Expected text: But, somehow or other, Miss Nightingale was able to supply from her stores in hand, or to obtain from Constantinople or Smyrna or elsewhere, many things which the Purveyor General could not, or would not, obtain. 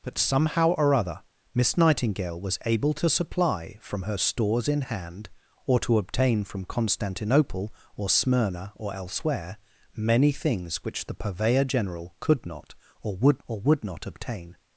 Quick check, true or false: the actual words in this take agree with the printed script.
false